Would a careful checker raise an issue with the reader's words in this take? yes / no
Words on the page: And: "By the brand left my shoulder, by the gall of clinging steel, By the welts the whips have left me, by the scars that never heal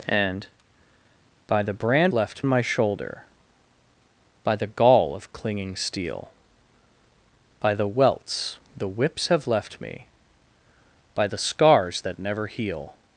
no